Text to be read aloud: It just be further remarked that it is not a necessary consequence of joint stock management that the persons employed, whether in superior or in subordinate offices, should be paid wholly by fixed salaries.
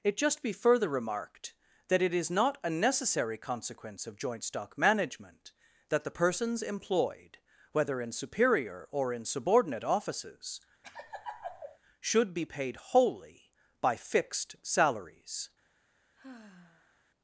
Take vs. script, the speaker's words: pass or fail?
pass